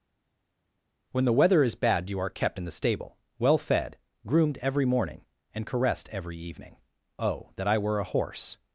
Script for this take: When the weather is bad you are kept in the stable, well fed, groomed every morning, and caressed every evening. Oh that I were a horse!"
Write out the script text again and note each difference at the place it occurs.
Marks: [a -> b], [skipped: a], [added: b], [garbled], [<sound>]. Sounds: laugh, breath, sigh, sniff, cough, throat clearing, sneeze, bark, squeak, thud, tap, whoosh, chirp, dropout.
When the weather is bad you are kept in the stable, well fed, groomed every morning, and caressed every evening. Oh that I were a horse!"